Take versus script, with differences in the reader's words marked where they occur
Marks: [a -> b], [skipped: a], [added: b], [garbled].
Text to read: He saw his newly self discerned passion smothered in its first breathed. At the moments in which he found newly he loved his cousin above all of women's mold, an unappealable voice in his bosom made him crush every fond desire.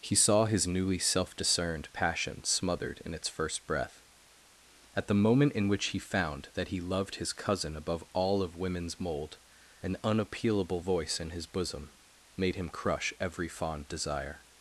He saw his newly self discerned passion smothered in its first [breathed. -> breath] At the [moments -> moment] in which he found [newly -> that] he loved his cousin above all of women's mold, an unappealable voice in his bosom made him crush every fond desire.